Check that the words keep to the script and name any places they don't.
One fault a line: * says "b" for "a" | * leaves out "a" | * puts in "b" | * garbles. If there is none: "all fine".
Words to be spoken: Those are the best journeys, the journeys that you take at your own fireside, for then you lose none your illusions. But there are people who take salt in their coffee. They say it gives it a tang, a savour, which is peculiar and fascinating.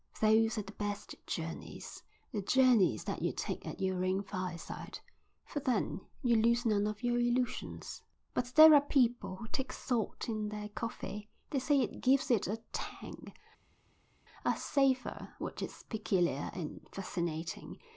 * puts in "of"